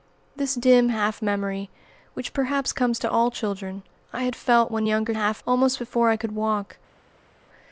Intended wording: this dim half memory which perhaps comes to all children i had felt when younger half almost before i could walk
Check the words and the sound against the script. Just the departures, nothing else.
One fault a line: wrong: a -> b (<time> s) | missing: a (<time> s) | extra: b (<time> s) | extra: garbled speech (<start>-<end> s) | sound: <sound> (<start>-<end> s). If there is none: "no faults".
no faults